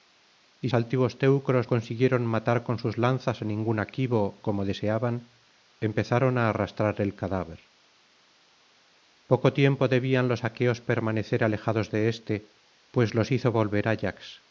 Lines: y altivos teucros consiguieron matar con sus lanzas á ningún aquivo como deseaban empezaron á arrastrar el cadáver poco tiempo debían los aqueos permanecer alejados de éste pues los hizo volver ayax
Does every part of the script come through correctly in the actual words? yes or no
yes